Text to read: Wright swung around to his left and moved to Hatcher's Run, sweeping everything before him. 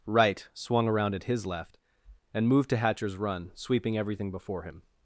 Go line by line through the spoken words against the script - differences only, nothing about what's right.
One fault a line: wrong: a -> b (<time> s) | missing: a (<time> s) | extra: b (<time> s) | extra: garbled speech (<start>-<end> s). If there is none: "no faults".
wrong: to -> at (1.1 s)